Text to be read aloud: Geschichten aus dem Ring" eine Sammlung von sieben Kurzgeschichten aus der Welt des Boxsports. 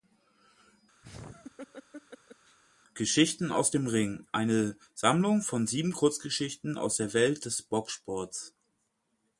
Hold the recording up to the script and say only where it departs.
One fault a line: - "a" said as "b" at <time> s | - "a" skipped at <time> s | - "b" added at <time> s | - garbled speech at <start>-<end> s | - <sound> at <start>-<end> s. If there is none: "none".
- laugh at 1.0-2.6 s